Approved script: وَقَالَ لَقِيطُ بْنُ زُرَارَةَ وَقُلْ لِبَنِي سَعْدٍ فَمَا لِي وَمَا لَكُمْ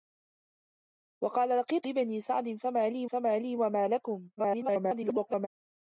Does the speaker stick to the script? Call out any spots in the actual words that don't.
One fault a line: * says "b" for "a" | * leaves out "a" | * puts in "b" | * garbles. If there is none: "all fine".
* says "لِبَنِي سَعْدٍ فَمَا لِي" for "بْنُ زُرَارَةَ وَقُلْ لِبَنِي سَعْدٍ"
* garbles